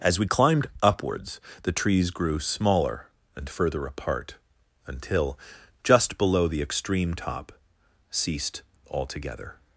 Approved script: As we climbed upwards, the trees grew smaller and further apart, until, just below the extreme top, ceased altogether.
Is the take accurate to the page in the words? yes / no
yes